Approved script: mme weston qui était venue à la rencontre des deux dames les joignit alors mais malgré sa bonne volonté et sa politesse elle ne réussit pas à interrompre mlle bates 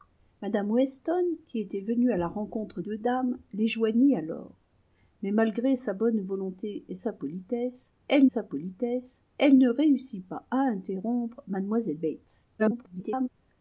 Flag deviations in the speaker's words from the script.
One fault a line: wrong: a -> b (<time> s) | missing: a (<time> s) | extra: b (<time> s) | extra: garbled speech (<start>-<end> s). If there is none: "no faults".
missing: des (2.8 s)
extra: sa politesse elle (8.2 s)
extra: garbled speech (12.6-13.3 s)